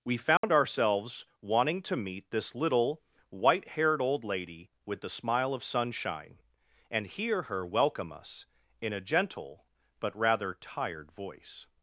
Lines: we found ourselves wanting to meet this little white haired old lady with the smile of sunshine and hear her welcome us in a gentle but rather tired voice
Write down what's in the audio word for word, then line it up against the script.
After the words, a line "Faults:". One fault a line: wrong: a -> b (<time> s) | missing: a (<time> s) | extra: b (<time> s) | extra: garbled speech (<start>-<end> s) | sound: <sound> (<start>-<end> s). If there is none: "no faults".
we found ourselves wanting to meet this little white haired old lady with the smile of sunshine and hear her welcome us in a gentle but rather tired voice
Faults:
sound: dropout (0.4-0.4 s)